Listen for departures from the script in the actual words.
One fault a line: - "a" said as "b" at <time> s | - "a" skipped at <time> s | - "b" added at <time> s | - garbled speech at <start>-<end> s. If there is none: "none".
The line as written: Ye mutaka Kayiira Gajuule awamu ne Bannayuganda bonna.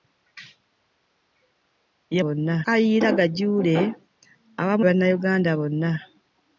- "mutaka" said as "bonna" at 2.2 s
- "ne" skipped at 4.8 s